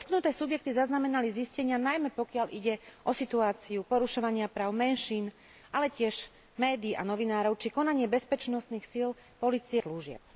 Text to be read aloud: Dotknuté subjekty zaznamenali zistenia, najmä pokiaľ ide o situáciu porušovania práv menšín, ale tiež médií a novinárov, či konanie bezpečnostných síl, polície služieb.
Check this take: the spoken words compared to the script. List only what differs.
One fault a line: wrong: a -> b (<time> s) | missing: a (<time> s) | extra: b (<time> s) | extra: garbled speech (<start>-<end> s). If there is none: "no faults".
no faults